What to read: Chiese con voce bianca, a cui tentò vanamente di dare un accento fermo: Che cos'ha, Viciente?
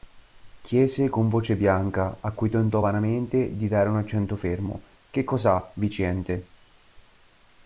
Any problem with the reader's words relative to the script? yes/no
no